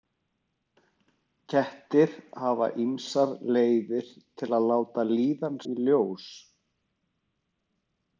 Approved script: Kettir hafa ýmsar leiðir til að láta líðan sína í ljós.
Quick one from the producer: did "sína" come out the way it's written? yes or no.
no